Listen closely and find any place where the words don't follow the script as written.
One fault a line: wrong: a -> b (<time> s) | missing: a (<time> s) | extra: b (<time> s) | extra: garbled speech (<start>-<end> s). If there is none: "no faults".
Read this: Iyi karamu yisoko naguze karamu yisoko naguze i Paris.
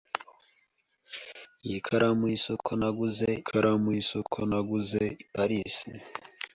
no faults